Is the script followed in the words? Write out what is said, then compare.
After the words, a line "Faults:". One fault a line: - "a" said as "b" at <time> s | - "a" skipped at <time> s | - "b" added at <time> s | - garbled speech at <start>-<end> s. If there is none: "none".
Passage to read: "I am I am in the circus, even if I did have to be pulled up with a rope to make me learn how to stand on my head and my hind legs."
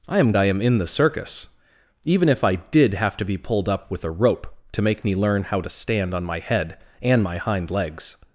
"I am I am in the circus, even if I did have to be pulled up with a rope to make me learn how to stand on my head and my hind legs."
Faults:
none